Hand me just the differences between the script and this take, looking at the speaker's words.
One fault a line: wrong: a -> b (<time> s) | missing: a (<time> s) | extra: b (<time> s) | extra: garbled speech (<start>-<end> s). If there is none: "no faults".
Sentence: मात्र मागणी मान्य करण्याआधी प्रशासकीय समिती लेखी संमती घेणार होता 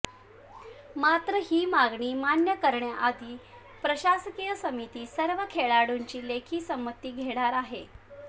extra: ही (1.4 s)
extra: सर्व खेळाडूंची (5.1 s)
wrong: होता -> आहे (7.5 s)